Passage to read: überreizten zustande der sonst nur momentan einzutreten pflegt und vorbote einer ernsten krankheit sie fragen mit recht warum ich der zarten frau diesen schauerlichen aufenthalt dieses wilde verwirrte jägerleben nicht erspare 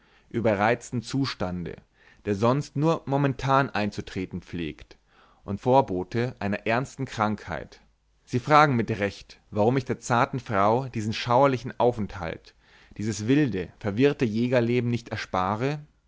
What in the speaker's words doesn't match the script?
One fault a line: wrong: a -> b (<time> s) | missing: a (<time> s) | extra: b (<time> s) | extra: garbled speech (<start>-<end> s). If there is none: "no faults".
no faults